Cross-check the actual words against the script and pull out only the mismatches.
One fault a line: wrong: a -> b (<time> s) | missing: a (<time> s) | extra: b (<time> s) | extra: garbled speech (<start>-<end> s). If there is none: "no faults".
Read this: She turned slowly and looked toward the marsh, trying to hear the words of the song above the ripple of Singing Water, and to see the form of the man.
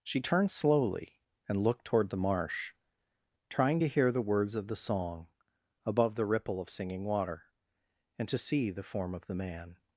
no faults